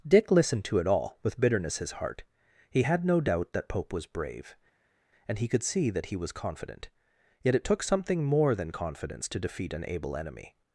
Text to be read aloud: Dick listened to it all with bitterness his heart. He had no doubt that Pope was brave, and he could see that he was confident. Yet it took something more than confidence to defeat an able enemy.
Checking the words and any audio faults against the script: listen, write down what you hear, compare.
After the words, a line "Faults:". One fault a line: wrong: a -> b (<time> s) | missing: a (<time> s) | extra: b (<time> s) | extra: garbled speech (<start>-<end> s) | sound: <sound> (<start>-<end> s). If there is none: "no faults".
Dick listened to it all with bitterness his heart. He had no doubt that Pope was brave, and he could see that he was confident. Yet it took something more than confidence to defeat an able enemy.
Faults:
no faults